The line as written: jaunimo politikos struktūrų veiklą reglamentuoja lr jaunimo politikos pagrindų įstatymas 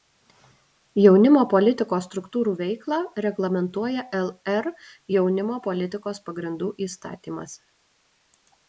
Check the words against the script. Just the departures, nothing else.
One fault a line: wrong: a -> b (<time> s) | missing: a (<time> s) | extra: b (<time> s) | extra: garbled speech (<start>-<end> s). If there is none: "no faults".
no faults